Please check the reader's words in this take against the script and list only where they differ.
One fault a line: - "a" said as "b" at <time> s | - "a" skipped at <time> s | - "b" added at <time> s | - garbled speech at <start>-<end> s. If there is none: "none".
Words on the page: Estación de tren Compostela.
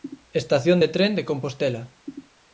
- "de" added at 1.2 s